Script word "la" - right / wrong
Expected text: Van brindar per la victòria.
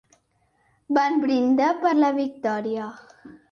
right